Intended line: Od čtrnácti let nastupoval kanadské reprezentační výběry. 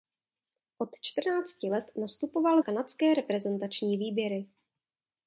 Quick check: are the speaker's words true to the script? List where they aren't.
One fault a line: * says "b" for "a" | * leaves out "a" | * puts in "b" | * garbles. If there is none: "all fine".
all fine